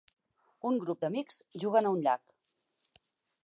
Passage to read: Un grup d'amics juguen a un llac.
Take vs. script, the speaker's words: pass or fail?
pass